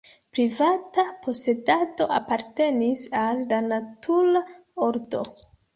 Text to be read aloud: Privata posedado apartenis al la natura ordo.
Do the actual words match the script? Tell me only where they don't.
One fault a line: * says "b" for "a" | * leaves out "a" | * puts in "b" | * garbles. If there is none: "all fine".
all fine